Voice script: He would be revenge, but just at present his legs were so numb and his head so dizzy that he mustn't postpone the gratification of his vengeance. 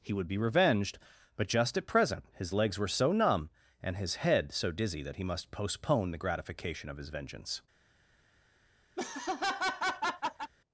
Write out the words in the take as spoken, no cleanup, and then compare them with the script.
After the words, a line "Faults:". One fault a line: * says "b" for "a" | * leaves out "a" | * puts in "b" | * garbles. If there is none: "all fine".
He would be revenged, but just at present his legs were so numb and his head so dizzy that he must postpone the gratification of his vengeance.
Faults:
* says "revenged" for "revenge"
* says "must" for "mustn't"